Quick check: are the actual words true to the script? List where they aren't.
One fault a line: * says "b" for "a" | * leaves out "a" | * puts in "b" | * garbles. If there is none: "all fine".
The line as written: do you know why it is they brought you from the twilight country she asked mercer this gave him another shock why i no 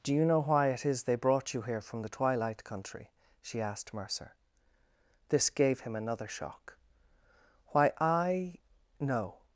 * puts in "here"